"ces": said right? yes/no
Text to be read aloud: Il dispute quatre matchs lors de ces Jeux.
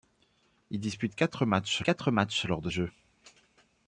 no